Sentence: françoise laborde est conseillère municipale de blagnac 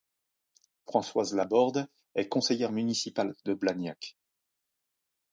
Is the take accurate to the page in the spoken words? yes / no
yes